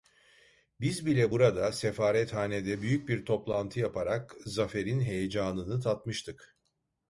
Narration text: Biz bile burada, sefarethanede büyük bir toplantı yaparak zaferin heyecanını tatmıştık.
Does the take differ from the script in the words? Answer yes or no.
no